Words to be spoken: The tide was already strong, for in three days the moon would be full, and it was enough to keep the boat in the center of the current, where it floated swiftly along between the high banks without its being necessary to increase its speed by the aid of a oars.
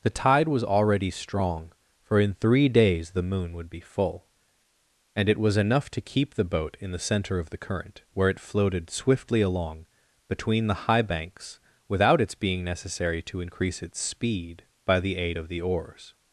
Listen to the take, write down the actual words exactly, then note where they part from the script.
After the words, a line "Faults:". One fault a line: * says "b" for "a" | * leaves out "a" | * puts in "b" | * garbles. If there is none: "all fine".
The tide was already strong, for in three days the moon would be full, and it was enough to keep the boat in the center of the current, where it floated swiftly along between the high banks without its being necessary to increase its speed by the aid of the oars.
Faults:
* says "the" for "a"